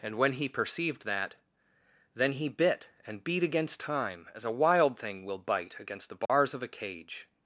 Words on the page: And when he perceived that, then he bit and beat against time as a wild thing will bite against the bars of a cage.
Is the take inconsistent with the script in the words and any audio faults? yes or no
yes